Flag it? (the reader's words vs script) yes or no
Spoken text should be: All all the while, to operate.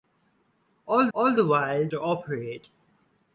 no